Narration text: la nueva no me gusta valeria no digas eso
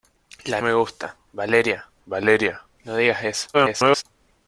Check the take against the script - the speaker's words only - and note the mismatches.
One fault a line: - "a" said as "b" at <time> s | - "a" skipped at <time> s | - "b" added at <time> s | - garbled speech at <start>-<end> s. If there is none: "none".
- "nueva no" skipped at 0.6 s
- "valeria" added at 2.1 s
- garbled speech at 3.5-4.0 s